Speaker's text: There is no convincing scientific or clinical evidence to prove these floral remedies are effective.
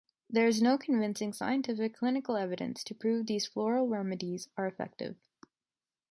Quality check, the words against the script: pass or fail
fail